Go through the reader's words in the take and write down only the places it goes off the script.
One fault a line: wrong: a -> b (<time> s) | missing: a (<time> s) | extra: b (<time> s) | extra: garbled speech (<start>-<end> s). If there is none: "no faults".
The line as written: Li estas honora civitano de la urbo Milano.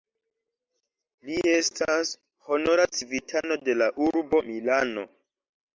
no faults